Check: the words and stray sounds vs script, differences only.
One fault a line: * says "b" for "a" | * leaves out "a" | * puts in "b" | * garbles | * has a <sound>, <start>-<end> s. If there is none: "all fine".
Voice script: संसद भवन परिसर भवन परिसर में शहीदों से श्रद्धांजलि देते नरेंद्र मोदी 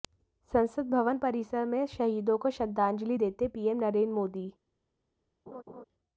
* leaves out "भवन परिसर"
* says "को" for "से"
* puts in "पीएम"
* has a laugh, 5.5-5.8 s